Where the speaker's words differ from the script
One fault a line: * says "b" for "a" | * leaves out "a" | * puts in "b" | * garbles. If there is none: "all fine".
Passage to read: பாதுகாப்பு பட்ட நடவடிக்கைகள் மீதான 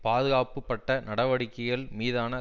all fine